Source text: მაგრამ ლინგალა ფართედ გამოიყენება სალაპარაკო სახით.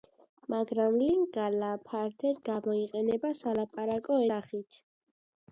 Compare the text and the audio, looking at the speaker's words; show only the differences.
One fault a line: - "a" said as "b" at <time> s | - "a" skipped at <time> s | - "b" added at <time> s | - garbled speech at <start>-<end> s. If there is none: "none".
none